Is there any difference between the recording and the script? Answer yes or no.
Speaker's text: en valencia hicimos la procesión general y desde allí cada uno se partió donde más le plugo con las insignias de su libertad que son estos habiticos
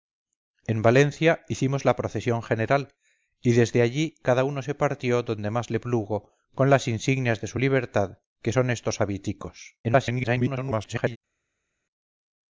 yes